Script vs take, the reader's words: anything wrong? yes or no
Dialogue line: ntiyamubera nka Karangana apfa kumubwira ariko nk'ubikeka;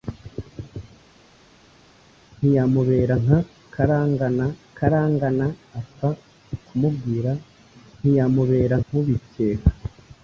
yes